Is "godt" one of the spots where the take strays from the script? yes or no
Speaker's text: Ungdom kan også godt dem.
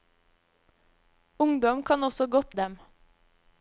no